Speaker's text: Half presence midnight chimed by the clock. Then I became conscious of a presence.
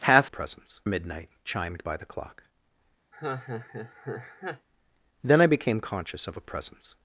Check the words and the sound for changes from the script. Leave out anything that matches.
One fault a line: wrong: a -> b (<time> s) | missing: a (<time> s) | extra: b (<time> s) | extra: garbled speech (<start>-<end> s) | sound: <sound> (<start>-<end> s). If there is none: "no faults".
sound: laugh (3.1-4.7 s)